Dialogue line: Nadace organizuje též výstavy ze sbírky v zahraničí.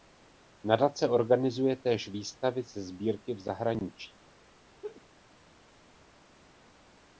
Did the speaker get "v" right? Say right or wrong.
right